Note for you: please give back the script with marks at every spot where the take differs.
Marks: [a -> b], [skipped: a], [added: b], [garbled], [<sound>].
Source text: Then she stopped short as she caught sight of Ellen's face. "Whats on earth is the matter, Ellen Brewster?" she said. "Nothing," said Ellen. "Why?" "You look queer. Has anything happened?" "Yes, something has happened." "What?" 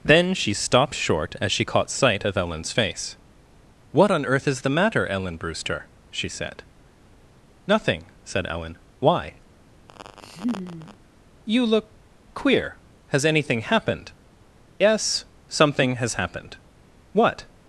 Then she stopped short as she caught sight of Ellen's face. ["Whats -> What] on earth is the matter, Ellen Brewster?" she said. "Nothing," said Ellen. "Why?" [laugh] "You look queer. Has anything happened?" "Yes, something has happened." "What?"